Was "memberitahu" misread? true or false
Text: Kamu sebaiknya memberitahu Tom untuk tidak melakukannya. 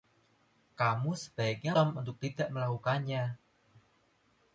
true